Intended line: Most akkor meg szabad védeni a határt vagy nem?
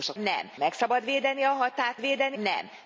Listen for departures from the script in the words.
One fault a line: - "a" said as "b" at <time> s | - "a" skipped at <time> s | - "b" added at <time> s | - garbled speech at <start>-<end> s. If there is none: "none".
- "akkor" said as "nem" at 0.2 s
- "vagy" said as "védeni" at 2.0 s